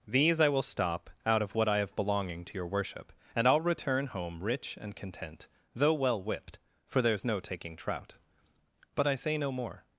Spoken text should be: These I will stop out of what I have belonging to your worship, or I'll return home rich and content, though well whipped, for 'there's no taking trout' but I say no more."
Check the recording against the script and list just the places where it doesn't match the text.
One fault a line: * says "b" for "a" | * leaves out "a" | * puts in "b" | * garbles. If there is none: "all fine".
* says "and" for "or"